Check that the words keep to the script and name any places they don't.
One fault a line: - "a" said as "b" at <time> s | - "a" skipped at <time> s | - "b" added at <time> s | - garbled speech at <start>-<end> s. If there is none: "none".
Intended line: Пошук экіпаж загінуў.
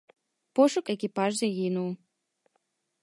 none